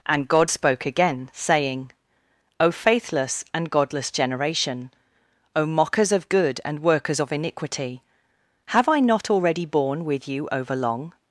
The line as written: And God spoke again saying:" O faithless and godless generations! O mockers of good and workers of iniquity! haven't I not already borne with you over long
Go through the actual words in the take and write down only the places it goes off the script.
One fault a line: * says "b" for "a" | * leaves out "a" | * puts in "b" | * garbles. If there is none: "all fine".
* says "generation" for "generations"
* says "have" for "haven't"